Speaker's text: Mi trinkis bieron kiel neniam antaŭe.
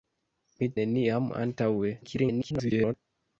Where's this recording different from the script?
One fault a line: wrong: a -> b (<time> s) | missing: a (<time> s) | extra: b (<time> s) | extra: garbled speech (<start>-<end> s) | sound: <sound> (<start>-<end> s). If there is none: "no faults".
missing: trinkis bieron kiel (0.7 s)
extra: garbled speech (2.0-2.9 s)